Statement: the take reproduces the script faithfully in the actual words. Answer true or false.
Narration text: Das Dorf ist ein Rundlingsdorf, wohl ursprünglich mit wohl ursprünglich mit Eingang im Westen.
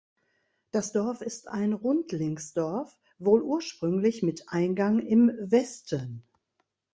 false